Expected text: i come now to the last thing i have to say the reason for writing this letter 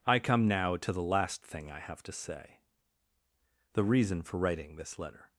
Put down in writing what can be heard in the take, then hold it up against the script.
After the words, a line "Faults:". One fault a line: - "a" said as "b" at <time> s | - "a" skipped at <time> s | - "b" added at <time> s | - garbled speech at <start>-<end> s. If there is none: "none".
i come now to the last thing i have to say the reason for writing this letter
Faults:
none